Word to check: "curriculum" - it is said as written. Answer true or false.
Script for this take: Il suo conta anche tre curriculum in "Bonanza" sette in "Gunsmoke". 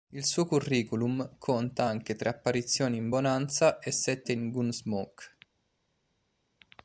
false